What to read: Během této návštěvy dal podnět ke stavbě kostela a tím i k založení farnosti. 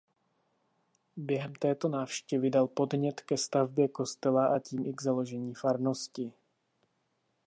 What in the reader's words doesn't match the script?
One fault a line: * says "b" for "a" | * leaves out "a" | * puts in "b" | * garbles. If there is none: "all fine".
all fine